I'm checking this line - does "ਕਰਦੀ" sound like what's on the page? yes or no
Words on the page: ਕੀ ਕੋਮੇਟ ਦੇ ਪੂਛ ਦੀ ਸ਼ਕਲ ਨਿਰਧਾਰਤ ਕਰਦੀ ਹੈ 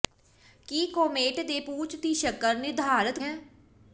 no